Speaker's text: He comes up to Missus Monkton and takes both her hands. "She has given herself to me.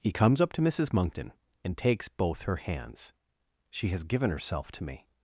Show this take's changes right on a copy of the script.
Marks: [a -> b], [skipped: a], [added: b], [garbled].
He comes up to Missus Monkton and takes both her hands. "She has given herself to me.